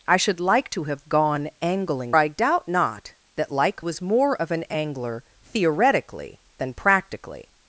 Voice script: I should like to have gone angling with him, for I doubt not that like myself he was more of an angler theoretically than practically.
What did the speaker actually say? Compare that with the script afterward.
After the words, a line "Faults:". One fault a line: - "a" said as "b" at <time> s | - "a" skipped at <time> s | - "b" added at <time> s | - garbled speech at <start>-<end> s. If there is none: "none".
I should like to have gone angling I doubt not that like was more of an angler theoretically than practically.
Faults:
- "with him for" skipped at 2.1 s
- "myself he" skipped at 3.8 s